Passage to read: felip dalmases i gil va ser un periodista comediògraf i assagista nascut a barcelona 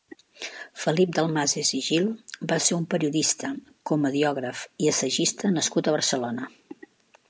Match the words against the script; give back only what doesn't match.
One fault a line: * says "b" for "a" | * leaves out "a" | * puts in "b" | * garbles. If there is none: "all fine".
all fine